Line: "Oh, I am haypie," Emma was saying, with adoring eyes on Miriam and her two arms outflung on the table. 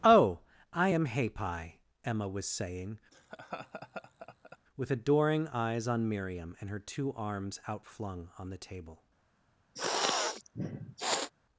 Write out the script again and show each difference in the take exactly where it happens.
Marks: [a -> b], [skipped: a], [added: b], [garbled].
"Oh, I am haypie," Emma was saying, with adoring eyes on Miriam and her two arms outflung on the table.